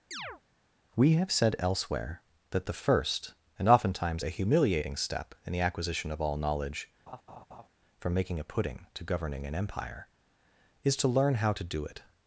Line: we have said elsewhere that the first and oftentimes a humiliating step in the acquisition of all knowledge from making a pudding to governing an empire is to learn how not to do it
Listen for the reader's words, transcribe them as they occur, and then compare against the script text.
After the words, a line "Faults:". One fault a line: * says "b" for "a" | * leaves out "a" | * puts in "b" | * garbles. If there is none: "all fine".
we have said elsewhere that the first and oftentimes a humiliating step in the acquisition of all knowledge from making a pudding to governing an empire is to learn how to do it
Faults:
* leaves out "not"